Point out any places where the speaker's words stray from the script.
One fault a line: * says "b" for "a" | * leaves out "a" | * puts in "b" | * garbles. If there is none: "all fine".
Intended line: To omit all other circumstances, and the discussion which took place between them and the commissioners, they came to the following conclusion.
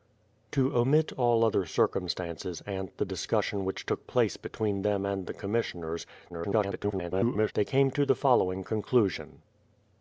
* garbles